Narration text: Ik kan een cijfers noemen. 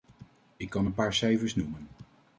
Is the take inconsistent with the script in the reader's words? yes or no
yes